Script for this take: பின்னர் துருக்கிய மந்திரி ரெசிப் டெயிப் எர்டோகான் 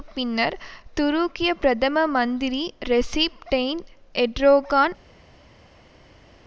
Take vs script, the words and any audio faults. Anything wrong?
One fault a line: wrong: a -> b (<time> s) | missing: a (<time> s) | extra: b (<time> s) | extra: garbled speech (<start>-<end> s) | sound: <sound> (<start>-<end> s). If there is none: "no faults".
extra: பிரதம (1.6 s)